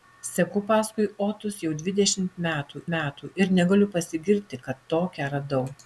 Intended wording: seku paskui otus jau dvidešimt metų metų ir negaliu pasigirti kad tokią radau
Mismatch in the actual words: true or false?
false